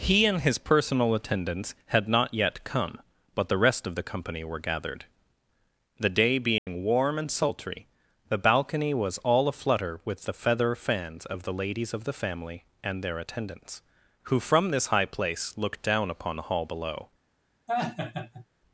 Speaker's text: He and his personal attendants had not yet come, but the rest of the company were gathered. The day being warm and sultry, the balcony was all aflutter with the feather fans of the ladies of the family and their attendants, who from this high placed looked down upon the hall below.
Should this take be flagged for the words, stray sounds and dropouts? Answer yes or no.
yes